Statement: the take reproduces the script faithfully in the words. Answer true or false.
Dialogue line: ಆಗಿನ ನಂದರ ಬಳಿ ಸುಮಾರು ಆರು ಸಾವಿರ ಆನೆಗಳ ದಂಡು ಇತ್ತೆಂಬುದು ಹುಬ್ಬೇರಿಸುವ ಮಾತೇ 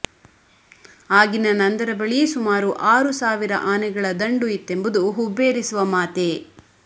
true